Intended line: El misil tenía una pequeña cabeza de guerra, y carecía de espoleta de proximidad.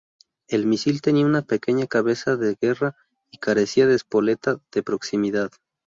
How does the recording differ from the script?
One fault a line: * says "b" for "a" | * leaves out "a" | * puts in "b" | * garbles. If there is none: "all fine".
all fine